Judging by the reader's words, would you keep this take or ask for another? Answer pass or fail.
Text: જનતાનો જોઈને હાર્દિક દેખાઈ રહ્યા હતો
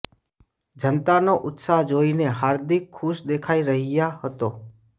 fail